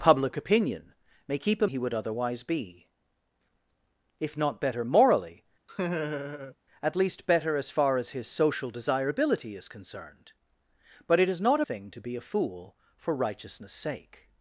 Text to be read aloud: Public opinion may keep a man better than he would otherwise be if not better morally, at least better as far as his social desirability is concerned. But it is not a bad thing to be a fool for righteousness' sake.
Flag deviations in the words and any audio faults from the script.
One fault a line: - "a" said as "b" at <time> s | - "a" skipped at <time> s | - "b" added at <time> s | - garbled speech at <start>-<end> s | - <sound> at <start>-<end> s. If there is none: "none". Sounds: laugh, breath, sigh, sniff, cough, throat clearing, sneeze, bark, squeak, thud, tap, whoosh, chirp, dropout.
- "man better than" skipped at 1.7 s
- laugh at 5.7-6.6 s
- "a bad" skipped at 11.6 s